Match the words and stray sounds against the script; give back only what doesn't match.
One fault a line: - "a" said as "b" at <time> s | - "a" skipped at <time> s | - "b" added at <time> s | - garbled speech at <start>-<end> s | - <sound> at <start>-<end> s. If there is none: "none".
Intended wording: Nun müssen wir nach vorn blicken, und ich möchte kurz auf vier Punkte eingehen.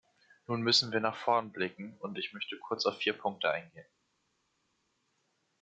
none